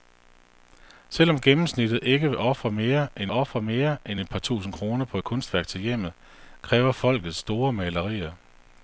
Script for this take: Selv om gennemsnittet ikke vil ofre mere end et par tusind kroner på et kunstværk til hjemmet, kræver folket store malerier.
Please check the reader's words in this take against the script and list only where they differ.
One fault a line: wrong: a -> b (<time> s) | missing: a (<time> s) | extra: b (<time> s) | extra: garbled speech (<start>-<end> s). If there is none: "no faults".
extra: ofre mere end (3.3 s)